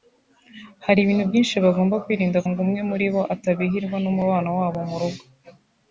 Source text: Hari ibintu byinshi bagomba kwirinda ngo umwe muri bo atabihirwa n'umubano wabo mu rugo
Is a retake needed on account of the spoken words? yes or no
no